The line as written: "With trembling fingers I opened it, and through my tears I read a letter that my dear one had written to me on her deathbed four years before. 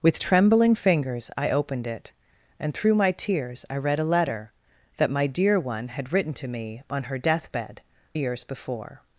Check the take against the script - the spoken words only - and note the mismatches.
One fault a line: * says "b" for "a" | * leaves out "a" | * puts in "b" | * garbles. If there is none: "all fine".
* leaves out "four"